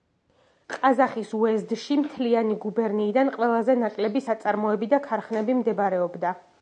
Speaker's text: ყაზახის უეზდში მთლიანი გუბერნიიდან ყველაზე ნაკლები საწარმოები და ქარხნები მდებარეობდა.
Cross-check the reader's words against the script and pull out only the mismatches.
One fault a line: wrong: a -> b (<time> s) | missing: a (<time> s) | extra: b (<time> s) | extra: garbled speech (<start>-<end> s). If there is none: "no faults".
no faults